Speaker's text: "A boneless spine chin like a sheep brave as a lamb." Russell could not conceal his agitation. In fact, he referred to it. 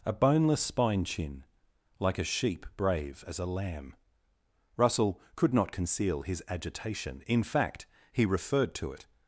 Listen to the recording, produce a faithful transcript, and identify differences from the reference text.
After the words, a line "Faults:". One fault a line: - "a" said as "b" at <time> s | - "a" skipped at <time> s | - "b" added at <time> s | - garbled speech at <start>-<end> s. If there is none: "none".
"A boneless spine chin like a sheep brave as a lamb." Russell could not conceal his agitation. In fact, he referred to it.
Faults:
none